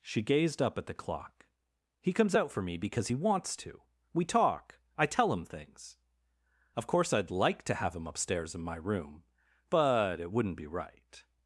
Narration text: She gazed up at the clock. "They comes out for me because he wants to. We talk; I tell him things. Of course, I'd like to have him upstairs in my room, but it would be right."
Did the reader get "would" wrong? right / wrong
wrong